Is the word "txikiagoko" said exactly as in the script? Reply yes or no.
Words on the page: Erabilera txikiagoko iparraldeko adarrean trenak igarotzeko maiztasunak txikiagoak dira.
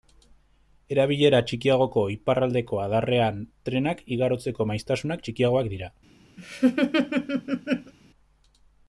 yes